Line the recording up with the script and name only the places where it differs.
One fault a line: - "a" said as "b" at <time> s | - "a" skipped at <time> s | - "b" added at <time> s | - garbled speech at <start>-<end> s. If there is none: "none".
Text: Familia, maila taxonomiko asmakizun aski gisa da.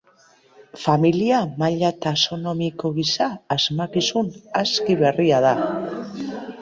- "gisa" added at 3.0 s
- "gisa" said as "berria" at 5.0 s